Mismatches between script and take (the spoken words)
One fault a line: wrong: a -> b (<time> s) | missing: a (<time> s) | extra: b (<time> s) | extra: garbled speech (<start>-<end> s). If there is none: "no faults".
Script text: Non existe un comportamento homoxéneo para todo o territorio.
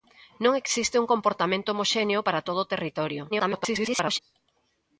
extra: garbled speech (3.3-4.2 s)